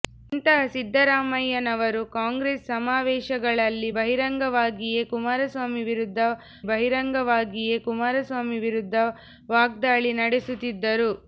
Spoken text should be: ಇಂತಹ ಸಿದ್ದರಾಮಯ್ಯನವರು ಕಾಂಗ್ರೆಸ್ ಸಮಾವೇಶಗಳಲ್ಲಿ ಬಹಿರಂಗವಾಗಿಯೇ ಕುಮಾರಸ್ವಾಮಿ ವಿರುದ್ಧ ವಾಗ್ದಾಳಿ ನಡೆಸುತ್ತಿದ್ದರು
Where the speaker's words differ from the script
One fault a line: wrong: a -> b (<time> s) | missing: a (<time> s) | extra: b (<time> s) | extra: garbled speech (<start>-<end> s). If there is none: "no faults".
extra: ಬಹಿರಂಗವಾಗಿಯೇ ಕುಮಾರಸ್ವಾಮಿ ವಿರುದ್ಧ (6.7 s)